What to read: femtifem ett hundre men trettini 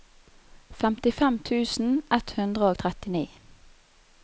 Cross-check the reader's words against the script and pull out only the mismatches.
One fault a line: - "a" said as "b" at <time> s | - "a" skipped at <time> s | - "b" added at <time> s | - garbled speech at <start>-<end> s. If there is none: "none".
- "tusen" added at 1.5 s
- "men" said as "og" at 2.7 s